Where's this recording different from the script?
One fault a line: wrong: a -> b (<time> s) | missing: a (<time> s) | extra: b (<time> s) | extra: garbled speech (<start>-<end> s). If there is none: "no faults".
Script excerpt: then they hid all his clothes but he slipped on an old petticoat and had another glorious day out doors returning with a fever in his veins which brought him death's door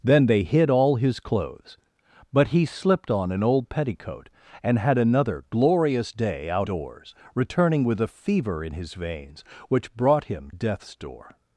no faults